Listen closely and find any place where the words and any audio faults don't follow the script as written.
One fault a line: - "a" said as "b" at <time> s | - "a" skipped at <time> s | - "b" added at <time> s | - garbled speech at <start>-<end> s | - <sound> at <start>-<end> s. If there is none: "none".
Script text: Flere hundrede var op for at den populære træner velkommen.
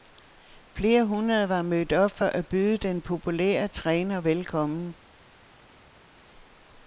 - "mødt" added at 1.6 s
- "byde" added at 2.5 s